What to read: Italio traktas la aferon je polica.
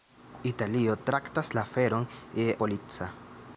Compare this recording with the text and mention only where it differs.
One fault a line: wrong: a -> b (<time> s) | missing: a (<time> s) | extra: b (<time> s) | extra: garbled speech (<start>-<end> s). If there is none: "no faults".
no faults